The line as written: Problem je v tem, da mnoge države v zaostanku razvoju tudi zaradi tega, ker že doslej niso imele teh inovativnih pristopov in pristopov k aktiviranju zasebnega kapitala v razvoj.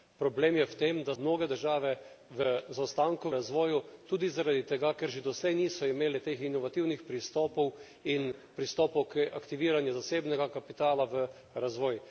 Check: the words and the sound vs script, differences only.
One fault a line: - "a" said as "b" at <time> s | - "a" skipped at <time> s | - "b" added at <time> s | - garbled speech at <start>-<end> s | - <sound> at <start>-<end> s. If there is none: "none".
none